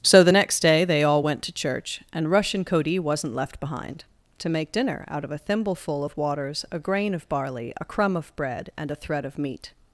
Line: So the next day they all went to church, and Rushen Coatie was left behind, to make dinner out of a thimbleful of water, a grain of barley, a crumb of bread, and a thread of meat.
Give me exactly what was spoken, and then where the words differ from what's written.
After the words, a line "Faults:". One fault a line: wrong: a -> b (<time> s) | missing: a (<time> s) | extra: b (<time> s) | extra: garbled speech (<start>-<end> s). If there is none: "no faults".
So the next day they all went to church, and Rushen Coatie wasn't left behind, to make dinner out of a thimbleful of waters, a grain of barley, a crumb of bread, and a thread of meat.
Faults:
wrong: was -> wasn't (3.0 s)
wrong: water -> waters (6.2 s)